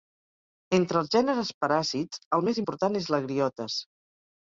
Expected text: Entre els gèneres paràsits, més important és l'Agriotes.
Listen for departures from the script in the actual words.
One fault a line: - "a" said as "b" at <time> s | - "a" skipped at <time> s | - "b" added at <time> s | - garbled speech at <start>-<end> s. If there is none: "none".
- "el" added at 2.4 s